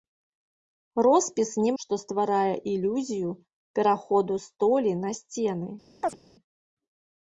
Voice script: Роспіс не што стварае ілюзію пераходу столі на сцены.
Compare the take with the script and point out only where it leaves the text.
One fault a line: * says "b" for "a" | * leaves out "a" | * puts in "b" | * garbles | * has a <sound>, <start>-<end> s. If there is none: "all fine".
* has a chirp, 6.0-6.2 s